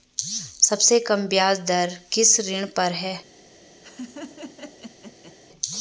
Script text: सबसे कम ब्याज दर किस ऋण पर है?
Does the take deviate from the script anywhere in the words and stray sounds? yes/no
yes